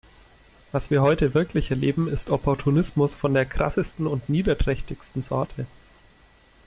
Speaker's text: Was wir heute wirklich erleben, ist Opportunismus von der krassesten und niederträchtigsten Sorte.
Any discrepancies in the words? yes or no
no